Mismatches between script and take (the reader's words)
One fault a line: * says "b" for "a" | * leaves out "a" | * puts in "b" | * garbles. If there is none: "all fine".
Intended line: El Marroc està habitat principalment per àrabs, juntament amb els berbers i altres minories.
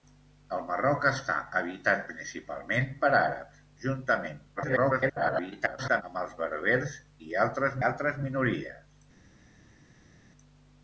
* garbles
* puts in "altres"